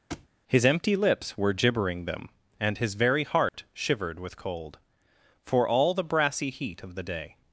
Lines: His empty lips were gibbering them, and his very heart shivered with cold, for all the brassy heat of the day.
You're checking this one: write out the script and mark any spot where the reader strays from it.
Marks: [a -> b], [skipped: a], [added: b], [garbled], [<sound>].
[thud] His empty lips were gibbering them, and his very heart [dropout] shivered with cold, for all the brassy heat of the day.